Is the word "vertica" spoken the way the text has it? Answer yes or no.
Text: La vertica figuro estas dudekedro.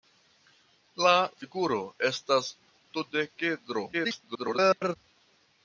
no